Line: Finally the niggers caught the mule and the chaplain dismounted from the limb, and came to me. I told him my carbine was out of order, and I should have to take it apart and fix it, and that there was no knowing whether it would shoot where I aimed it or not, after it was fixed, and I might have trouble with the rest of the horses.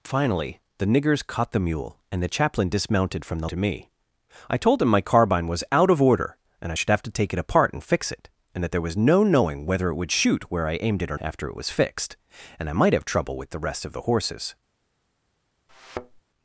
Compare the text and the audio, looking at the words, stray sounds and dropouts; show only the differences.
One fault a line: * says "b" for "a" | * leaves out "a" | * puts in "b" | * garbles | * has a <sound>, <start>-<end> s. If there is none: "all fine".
* leaves out "limb and came"
* leaves out "not"
* has a thud, 15.7-16.2 s